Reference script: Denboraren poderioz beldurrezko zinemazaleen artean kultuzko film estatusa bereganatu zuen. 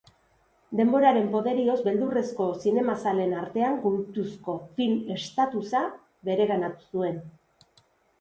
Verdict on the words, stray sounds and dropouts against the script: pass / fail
pass